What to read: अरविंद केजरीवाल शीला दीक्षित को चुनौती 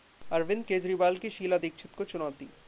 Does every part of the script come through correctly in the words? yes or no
no